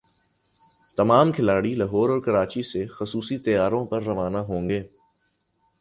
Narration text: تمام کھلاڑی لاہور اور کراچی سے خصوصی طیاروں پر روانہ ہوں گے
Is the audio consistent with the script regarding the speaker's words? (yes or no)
yes